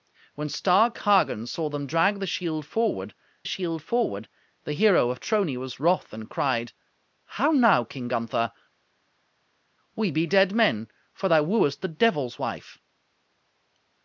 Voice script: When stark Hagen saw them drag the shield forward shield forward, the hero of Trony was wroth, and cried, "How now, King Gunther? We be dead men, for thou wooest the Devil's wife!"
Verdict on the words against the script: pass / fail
pass